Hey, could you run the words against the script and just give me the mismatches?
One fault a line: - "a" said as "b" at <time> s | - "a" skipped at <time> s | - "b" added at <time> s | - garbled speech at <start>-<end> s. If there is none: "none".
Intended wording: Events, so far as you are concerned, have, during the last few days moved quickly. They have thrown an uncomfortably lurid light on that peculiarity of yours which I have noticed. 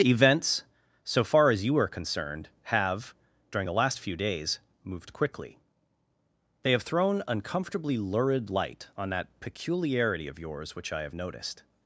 - "an" skipped at 7.2 s